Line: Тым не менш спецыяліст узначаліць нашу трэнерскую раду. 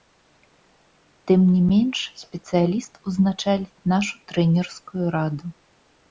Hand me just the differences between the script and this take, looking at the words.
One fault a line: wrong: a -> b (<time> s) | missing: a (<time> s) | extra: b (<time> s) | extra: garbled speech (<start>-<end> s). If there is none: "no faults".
no faults